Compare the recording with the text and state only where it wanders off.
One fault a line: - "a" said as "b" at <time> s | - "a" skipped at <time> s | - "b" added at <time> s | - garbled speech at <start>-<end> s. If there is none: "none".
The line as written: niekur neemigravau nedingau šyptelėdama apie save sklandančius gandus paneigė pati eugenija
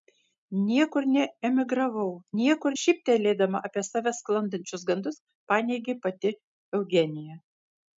- "nedingau" said as "niekur" at 2.4 s